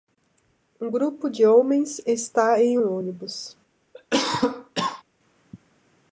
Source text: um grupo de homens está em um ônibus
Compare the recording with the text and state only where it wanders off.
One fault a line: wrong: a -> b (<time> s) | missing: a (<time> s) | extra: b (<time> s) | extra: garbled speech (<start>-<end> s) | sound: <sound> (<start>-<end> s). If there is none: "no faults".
sound: cough (3.9-5.0 s)